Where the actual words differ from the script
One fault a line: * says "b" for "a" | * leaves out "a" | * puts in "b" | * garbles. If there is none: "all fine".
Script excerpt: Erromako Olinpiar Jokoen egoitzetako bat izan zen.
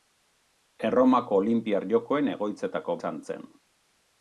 * leaves out "bat"